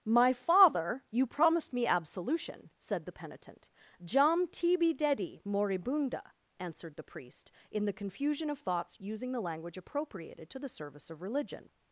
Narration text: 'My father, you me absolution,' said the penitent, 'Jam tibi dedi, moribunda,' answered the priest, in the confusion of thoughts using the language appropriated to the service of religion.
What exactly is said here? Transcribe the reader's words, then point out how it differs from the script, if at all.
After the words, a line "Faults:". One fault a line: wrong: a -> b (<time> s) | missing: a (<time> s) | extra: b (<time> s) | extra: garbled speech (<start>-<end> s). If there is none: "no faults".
'My father, you promised me absolution,' said the penitent, 'Jam tibi dedi, moribunda,' answered the priest, in the confusion of thoughts using the language appropriated to the service of religion.
Faults:
extra: promised (1.3 s)